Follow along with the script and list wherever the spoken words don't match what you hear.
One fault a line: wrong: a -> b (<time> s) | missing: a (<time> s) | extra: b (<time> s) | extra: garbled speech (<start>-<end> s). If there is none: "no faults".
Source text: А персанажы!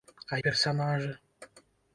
no faults